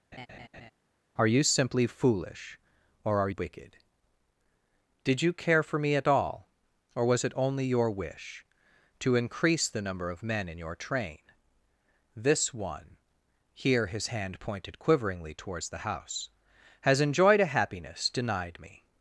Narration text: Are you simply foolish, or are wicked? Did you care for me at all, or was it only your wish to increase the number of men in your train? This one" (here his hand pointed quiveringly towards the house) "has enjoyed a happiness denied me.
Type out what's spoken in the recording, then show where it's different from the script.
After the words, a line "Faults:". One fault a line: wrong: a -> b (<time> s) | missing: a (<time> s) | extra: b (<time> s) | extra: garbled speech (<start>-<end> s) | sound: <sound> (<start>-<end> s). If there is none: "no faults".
Are you simply foolish, or are wicked? Did you care for me at all, or was it only your wish to increase the number of men in your train? This one" (here his hand pointed quiveringly towards the house) "has enjoyed a happiness denied me.
Faults:
sound: laugh (0.1-0.7 s)